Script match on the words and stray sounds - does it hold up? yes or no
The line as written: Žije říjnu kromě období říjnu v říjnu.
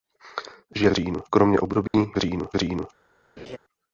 no